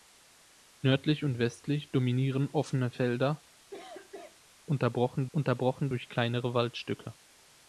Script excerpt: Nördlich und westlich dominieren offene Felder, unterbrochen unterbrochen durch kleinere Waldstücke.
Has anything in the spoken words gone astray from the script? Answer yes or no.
no